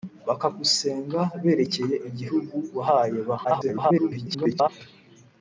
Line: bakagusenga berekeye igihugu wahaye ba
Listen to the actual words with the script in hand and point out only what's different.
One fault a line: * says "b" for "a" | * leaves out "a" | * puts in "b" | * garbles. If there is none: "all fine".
* garbles